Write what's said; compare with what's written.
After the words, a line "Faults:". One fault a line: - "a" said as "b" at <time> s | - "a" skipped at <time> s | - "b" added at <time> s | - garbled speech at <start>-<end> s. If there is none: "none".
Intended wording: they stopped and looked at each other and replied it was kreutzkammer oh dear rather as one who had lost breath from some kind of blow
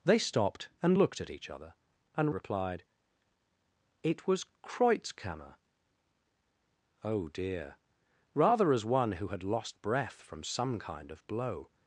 they stopped and looked at each other and replied it was kreutzkammer oh dear rather as one who had lost breath from some kind of blow
Faults:
none